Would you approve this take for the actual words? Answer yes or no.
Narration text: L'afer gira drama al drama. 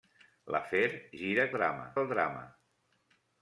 yes